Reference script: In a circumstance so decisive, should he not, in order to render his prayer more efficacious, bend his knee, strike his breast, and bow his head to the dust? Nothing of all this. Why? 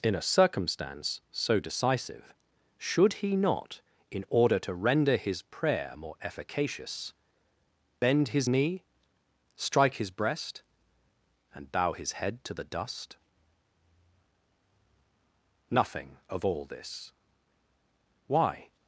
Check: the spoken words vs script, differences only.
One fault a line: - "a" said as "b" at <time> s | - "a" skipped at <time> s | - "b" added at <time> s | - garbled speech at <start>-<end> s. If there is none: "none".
none